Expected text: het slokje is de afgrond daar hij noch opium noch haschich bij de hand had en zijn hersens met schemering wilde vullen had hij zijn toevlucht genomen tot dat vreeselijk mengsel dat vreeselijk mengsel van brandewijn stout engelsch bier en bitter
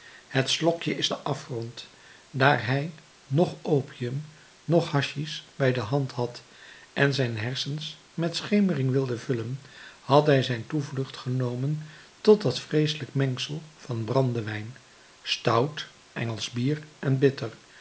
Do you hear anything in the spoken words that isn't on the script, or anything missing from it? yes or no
yes